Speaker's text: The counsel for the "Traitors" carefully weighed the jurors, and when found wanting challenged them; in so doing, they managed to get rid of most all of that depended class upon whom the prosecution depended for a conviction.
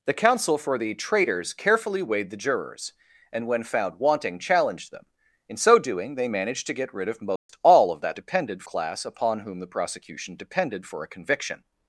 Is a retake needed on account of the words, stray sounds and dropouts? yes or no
yes